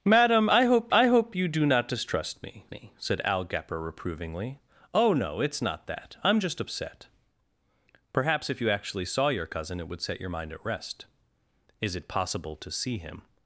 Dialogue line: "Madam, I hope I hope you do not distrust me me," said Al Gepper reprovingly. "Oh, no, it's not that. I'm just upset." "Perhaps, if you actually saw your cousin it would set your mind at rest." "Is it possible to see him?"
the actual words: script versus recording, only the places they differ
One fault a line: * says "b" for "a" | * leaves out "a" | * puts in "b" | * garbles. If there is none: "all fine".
all fine